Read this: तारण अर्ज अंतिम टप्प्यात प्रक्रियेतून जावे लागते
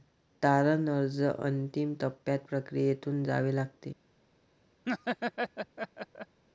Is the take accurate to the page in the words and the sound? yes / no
no